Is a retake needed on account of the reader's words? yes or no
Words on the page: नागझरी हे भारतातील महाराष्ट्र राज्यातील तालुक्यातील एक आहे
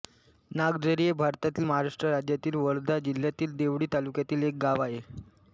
yes